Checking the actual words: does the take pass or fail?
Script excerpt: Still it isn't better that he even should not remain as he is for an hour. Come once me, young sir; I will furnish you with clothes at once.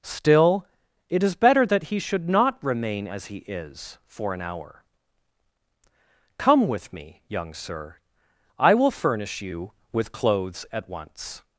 fail